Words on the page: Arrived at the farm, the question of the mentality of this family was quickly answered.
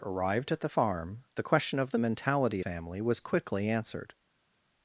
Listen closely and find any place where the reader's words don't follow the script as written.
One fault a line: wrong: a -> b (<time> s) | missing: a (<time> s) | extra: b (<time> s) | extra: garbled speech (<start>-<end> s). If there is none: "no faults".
missing: of this (2.6 s)